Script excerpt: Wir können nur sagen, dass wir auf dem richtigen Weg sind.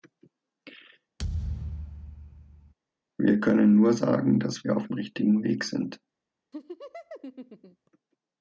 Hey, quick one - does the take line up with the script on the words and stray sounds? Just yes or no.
no